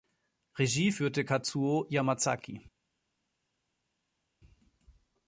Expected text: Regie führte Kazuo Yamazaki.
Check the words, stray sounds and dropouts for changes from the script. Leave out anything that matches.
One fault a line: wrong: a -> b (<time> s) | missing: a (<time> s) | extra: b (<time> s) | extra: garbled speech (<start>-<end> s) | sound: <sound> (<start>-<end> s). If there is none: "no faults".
no faults